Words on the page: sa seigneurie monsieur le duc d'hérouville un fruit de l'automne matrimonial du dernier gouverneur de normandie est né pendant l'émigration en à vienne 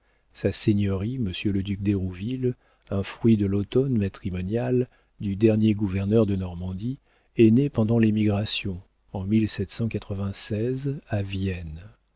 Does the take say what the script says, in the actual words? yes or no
yes